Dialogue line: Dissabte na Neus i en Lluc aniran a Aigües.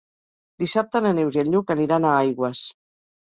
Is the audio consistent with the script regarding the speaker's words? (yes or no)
yes